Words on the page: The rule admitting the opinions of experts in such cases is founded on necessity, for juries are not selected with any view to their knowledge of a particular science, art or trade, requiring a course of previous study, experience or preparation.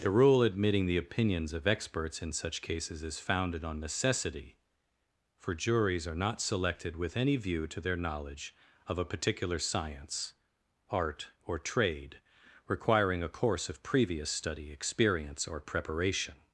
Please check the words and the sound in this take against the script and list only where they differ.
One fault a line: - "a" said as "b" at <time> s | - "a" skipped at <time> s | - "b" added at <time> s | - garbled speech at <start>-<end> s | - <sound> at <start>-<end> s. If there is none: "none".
none